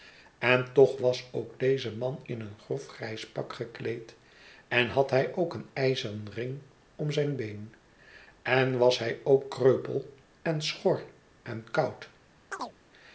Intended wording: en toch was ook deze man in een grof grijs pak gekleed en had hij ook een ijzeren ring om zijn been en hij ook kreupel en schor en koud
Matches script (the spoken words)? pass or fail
fail